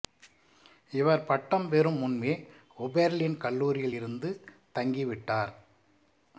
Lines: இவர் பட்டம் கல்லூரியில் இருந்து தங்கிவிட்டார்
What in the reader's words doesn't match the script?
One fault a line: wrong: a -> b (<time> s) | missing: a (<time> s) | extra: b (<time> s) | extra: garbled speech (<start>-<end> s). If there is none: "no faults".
extra: பெறும் முன்பே ஓபெர்லின் (1.7 s)